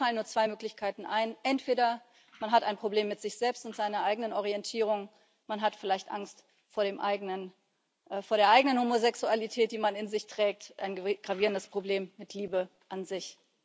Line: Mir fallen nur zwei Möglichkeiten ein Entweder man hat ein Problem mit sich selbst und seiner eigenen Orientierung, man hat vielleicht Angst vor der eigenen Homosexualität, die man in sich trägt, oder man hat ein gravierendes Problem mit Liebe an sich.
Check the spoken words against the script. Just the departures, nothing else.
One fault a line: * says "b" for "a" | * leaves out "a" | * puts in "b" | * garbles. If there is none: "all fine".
* leaves out "oder man hat"